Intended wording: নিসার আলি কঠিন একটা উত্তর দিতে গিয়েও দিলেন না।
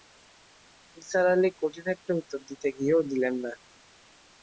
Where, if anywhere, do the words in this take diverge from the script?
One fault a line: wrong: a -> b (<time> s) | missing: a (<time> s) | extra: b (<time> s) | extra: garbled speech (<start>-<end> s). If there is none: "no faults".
no faults